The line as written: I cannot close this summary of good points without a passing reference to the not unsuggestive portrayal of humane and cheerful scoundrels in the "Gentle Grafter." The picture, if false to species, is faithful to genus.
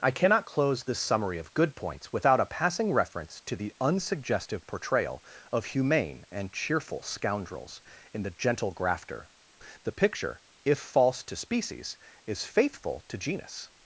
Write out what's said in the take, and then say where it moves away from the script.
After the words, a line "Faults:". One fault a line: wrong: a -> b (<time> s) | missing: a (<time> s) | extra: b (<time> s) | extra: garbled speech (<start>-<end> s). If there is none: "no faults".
I cannot close this summary of good points without a passing reference to the unsuggestive portrayal of humane and cheerful scoundrels in the "Gentle Grafter." The picture, if false to species, is faithful to genus.
Faults:
missing: not (3.7 s)